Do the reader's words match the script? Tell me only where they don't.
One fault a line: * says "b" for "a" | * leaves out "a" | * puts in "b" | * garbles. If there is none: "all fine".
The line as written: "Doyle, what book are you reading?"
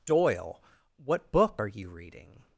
all fine